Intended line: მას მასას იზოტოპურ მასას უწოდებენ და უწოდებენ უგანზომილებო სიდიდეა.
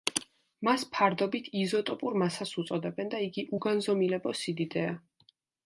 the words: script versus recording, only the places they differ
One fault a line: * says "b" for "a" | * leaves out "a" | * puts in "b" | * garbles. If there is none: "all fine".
* says "ფარდობით" for "მასას"
* says "იგი" for "უწოდებენ"